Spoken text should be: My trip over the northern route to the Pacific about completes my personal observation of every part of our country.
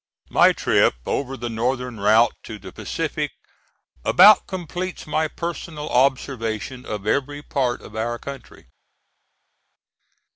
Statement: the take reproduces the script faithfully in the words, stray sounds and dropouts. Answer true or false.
true